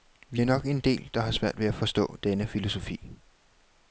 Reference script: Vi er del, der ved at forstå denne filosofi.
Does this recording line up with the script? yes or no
no